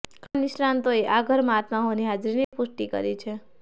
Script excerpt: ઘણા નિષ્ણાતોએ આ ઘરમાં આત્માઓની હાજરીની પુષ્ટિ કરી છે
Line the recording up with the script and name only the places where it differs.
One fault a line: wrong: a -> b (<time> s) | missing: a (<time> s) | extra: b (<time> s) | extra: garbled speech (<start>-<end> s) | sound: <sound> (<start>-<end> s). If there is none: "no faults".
sound: dropout (2.4-2.5 s)